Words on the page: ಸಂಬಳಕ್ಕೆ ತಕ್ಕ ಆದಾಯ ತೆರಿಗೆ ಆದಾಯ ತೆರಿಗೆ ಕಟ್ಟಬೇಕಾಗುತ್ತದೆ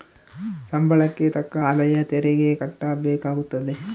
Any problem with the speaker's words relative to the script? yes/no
yes